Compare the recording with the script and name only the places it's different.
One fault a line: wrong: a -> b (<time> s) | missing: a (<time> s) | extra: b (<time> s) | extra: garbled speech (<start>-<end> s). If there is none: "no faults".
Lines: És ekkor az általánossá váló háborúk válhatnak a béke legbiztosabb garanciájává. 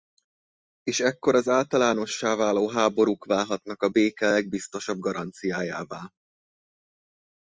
no faults